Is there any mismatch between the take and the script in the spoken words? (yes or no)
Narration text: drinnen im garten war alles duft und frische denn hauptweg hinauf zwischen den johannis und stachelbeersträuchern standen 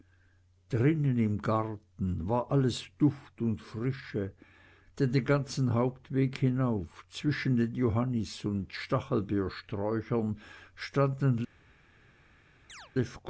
yes